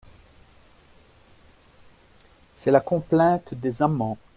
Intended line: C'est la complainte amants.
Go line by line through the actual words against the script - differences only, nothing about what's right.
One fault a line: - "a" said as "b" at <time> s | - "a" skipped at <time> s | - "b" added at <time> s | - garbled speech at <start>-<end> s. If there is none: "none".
- "des" added at 3.5 s